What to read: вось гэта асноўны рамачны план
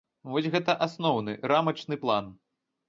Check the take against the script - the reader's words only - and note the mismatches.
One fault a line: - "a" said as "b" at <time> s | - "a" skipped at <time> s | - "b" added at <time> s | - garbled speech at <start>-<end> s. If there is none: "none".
none